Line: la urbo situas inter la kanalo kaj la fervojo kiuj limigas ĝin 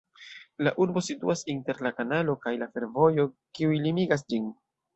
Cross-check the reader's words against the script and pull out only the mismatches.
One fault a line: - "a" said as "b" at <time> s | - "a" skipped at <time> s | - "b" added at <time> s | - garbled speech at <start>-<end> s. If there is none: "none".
none